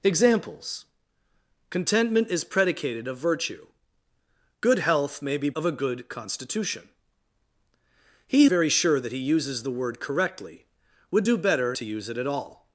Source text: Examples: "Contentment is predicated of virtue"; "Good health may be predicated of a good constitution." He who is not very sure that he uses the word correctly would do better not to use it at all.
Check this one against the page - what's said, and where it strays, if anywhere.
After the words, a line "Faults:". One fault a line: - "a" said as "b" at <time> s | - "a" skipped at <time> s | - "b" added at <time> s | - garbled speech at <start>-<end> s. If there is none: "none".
Examples: "Contentment is predicated of virtue"; "Good health may be of a good constitution." He very sure that he uses the word correctly would do better to use it at all.
Faults:
- "predicated" skipped at 5.5 s
- "who is not" skipped at 8.5 s
- "not" skipped at 11.7 s